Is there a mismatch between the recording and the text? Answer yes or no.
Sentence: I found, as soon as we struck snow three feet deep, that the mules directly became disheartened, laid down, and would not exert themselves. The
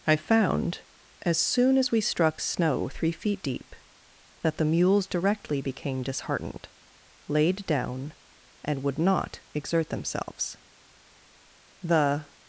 no